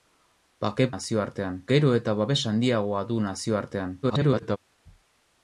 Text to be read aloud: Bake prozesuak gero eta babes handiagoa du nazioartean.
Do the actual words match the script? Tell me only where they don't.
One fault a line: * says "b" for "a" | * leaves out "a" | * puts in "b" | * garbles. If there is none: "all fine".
* says "nazioartean" for "prozesuak"
* garbles